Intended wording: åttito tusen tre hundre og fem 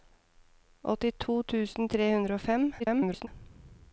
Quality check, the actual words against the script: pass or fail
fail